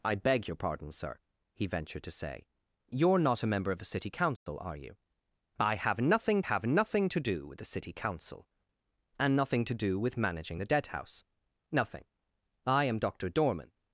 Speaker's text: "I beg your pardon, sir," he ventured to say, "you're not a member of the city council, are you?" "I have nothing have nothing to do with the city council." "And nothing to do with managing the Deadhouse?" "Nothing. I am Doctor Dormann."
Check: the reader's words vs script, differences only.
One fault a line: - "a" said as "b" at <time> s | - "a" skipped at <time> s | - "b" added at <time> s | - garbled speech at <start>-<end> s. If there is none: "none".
none